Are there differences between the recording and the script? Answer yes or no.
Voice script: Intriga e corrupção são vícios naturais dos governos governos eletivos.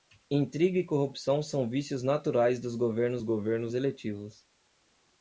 no